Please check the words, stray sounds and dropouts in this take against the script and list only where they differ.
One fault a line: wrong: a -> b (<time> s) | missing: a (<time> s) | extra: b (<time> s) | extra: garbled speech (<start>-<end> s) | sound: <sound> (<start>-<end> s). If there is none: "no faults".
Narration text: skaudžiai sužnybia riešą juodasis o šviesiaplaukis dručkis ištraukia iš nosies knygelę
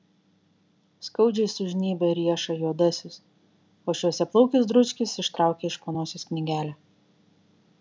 extra: po (5.8 s)